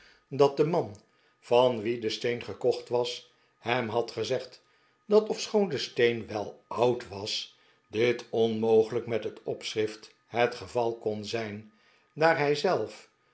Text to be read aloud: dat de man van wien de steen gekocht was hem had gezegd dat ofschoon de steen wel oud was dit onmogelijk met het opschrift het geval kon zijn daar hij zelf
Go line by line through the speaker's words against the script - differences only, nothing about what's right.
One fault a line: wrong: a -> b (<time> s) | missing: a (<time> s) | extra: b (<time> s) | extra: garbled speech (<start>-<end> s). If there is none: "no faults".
no faults